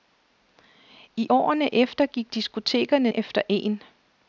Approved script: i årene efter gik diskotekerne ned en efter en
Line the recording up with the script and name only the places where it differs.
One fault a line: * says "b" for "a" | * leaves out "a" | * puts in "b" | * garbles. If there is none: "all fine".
* leaves out "ned en"